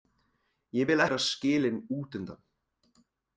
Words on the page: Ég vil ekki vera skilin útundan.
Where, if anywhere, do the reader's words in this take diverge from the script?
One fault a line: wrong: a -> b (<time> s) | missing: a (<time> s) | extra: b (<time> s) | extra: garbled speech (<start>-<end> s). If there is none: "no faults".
missing: ekki (1.0 s)